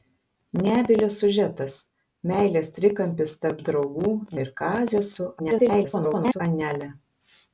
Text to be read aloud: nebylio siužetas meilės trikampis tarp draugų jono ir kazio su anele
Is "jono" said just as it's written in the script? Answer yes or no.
no